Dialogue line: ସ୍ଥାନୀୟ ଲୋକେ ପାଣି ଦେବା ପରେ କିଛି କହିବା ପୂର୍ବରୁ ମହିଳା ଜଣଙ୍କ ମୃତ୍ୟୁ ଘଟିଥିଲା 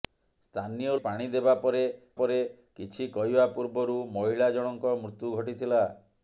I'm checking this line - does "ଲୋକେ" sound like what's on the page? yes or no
no